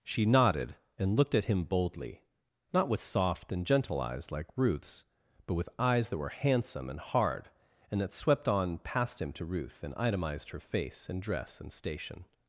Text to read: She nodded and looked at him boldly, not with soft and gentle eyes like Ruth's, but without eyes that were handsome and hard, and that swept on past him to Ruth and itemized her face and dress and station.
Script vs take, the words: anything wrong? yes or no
yes